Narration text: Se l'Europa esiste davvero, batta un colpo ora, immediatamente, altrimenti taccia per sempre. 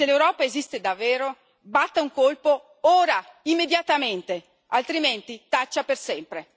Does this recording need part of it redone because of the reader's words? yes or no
no